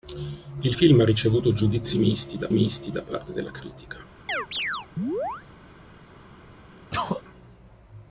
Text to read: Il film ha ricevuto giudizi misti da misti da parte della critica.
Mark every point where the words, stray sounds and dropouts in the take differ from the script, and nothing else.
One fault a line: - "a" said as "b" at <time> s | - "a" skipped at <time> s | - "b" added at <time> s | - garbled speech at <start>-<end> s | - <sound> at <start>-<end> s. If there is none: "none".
- chirp at 4.3-5.4 s
- sneeze at 6.9-7.2 s